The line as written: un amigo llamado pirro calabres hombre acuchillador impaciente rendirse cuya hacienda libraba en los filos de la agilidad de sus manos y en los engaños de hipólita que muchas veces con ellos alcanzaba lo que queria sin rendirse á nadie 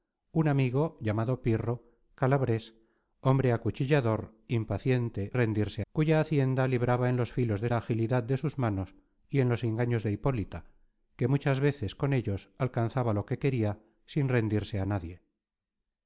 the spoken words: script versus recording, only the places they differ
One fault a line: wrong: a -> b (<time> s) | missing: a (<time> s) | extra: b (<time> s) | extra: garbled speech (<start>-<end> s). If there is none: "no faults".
no faults